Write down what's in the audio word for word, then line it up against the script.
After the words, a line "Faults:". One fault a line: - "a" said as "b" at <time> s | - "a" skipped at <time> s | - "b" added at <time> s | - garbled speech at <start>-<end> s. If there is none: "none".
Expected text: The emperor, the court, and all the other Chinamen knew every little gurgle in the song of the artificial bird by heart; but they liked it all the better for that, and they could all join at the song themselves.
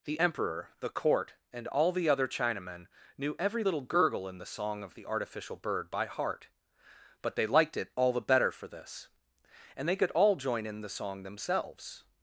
The emperor, the court, and all the other Chinamen knew every little gurgle in the song of the artificial bird by heart; but they liked it all the better for this, and they could all join in the song themselves.
Faults:
- "that" said as "this" at 8.7 s
- "at" said as "in" at 10.7 s